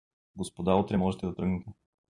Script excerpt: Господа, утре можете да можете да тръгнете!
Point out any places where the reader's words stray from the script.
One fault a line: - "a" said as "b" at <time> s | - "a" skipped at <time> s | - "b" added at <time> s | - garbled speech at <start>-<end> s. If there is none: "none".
- "можете да" skipped at 1.4 s